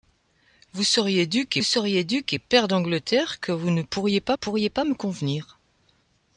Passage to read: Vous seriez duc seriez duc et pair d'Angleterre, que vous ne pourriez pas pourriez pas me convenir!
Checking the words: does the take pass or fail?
pass